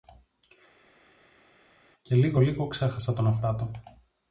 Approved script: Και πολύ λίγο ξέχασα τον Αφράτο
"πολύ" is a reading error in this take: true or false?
true